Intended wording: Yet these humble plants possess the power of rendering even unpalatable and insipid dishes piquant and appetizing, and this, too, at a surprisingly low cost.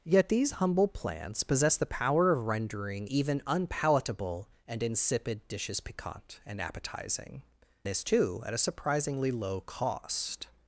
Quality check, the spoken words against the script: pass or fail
fail